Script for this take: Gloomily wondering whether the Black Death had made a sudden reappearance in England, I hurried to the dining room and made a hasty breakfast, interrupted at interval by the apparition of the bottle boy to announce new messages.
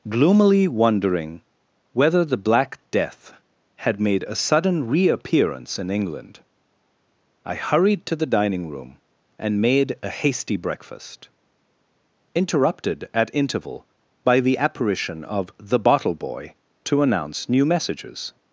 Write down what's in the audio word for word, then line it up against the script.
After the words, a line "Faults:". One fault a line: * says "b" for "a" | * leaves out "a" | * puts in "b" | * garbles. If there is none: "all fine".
Gloomily wondering whether the Black Death had made a sudden reappearance in England, I hurried to the dining room and made a hasty breakfast, interrupted at interval by the apparition of the bottle boy to announce new messages.
Faults:
all fine